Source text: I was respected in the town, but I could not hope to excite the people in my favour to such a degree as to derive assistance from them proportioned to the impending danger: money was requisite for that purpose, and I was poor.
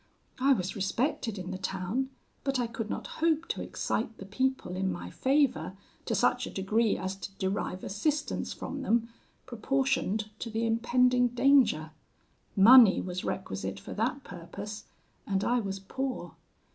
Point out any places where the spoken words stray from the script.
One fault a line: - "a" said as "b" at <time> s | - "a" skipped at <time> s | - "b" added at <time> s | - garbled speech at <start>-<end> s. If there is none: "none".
none